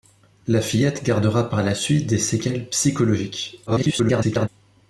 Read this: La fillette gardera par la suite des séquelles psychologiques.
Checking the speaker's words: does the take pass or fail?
fail